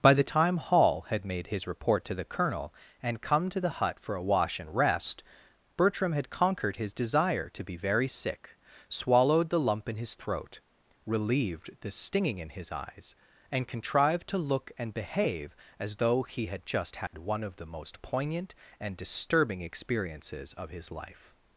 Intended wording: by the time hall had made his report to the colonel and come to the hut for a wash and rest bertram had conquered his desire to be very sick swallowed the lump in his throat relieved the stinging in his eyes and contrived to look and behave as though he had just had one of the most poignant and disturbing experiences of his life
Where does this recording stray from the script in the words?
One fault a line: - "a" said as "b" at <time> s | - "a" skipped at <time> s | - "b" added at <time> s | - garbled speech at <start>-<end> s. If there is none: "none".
none